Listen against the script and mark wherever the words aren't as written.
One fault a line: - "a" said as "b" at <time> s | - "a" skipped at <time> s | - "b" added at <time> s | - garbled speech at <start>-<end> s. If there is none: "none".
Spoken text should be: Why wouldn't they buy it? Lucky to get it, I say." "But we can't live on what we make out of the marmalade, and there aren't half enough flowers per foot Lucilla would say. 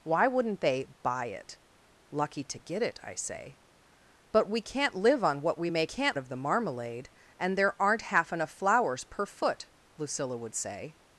- "out" said as "can't" at 5.8 s